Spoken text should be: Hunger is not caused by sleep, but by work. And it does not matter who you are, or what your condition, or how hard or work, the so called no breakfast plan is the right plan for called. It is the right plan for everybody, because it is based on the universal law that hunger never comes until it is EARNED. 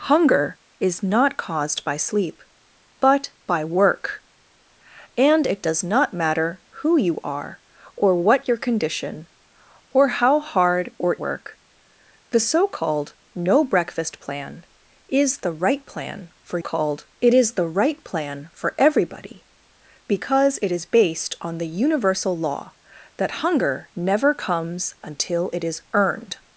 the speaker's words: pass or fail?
pass